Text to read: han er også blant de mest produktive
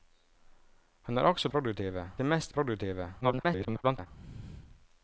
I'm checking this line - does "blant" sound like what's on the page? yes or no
no